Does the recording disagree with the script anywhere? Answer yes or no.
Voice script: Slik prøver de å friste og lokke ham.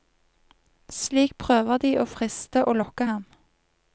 no